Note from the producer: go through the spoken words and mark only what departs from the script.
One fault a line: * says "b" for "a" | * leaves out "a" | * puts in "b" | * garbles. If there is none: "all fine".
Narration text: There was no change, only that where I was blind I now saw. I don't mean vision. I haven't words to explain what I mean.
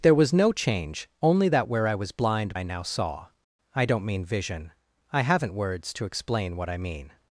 all fine